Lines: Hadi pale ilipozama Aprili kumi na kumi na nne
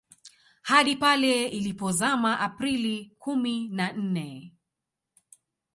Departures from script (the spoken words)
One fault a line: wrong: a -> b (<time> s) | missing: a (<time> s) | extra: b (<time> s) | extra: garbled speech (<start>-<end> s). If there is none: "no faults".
missing: kumi na (3.9 s)